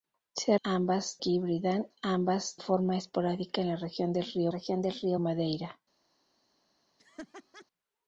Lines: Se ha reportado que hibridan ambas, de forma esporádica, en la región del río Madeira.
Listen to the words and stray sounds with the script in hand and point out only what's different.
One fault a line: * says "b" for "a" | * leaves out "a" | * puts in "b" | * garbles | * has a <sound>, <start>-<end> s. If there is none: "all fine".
* says "ambas" for "reportado"
* leaves out "de"
* puts in "región del río"
* has a laugh, 7.0-7.7 s